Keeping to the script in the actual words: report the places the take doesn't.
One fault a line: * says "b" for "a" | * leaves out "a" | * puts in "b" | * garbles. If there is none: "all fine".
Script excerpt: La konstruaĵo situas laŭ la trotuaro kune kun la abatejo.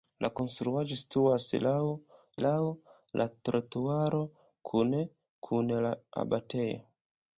* puts in "laŭ"